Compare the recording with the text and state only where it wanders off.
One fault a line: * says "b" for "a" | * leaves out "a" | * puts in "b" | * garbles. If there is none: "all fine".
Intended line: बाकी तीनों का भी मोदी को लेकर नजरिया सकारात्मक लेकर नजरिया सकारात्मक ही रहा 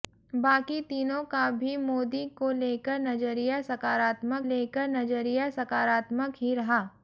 all fine